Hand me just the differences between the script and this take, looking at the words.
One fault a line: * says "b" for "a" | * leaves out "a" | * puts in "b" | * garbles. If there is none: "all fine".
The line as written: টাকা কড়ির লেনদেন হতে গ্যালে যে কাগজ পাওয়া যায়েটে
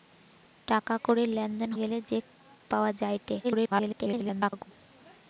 * leaves out "হতে"
* leaves out "কাগজ"
* garbles